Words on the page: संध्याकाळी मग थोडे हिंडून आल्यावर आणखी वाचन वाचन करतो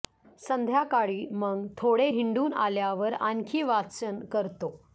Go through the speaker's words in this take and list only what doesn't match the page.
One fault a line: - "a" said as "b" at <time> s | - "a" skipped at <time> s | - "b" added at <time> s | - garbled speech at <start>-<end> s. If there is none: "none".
- "वाचन" skipped at 4.2 s